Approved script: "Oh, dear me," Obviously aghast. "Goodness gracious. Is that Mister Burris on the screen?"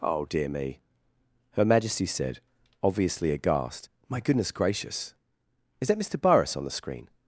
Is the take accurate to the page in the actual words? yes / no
no